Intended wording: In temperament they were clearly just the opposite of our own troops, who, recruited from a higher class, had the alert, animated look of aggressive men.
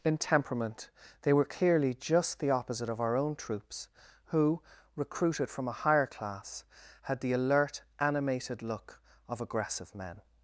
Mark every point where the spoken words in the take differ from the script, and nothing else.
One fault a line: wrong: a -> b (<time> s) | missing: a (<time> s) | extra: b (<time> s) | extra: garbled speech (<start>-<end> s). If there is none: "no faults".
no faults